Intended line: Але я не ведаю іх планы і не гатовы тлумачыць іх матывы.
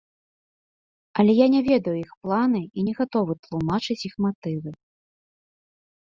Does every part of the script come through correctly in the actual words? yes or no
yes